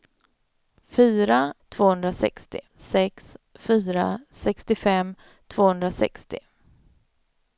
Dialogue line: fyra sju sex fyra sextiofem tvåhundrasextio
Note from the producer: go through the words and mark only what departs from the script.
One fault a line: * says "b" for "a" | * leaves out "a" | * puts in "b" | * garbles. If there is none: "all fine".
* says "tvåhundrasextio" for "sju"